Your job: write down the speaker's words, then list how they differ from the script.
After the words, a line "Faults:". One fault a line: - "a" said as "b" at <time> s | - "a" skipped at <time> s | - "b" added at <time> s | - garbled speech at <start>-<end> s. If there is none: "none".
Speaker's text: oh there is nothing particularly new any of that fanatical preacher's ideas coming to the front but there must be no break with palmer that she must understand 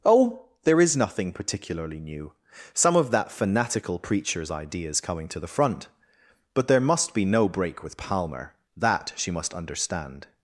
oh there is nothing particularly new some of that fanatical preacher's ideas coming to the front but there must be no break with palmer that she must understand
Faults:
- "any" said as "some" at 2.7 s